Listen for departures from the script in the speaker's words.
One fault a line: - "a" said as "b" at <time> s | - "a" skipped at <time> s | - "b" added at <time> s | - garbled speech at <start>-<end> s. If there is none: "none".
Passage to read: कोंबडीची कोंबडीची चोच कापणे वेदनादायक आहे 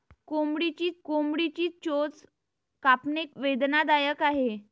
none